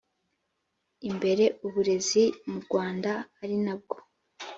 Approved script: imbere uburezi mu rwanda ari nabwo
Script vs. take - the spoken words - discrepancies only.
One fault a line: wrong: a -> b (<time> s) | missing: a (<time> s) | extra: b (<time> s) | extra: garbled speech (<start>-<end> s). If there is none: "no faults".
no faults